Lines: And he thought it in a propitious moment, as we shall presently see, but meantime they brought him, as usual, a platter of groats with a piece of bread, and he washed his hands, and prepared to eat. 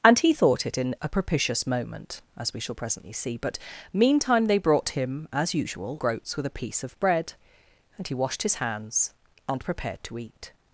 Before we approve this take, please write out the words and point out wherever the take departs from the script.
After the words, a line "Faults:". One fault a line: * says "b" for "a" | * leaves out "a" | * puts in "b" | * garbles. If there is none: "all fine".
And he thought it in a propitious moment, as we shall presently see, but meantime they brought him, as usual, groats with a piece of bread, and he washed his hands, and prepared to eat.
Faults:
* leaves out "a platter of"